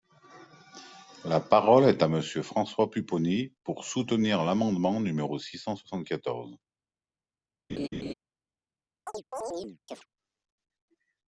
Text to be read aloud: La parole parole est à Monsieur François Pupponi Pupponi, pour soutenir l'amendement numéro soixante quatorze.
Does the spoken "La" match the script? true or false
true